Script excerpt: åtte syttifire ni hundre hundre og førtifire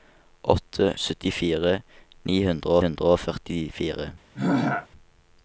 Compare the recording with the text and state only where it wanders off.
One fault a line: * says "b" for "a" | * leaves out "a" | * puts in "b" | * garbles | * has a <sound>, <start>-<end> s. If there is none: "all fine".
* has a throat clearing, 4.3-4.9 s